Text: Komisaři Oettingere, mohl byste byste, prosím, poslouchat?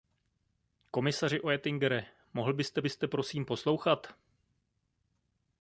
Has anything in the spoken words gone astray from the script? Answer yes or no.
no